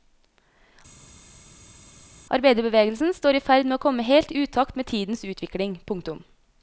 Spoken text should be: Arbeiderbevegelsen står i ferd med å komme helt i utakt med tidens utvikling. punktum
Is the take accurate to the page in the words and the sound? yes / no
yes